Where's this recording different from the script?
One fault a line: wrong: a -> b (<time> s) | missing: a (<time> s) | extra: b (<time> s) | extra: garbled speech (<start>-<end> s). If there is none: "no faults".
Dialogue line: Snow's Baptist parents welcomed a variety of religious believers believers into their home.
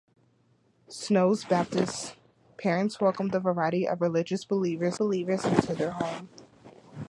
no faults